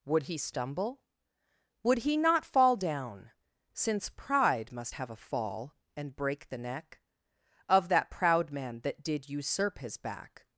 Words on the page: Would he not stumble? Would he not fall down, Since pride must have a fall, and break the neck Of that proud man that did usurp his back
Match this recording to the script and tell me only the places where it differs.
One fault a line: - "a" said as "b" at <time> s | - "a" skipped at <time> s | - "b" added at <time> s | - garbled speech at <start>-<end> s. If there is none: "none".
- "not" skipped at 0.4 s